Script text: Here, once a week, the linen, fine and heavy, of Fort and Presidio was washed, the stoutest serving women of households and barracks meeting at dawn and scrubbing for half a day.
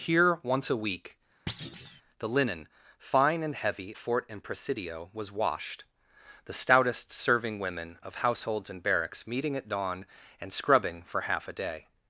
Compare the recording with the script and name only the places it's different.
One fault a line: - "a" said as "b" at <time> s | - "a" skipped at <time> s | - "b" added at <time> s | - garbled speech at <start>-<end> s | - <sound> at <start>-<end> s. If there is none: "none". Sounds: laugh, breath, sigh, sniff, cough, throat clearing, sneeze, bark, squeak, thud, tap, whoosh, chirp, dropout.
- thud at 1.5-2.0 s
- "of" skipped at 4.0 s